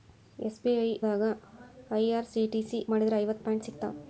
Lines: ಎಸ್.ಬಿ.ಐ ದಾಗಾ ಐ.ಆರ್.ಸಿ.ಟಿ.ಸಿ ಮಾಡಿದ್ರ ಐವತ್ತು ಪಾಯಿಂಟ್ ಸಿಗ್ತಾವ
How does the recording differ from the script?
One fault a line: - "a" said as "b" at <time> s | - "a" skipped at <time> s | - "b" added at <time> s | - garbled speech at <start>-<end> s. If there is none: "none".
none